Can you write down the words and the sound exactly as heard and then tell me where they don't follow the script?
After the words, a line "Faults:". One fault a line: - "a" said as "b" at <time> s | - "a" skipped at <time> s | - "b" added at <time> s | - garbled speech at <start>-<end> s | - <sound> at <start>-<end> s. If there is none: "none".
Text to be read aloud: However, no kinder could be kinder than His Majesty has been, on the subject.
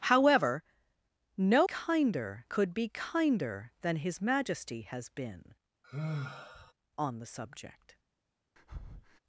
However, no kinder could be kinder than His Majesty has been, on the subject.
Faults:
- sigh at 5.8-6.7 s
- breath at 8.6-9.2 s